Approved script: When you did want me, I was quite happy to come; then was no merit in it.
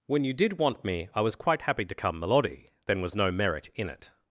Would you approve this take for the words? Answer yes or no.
no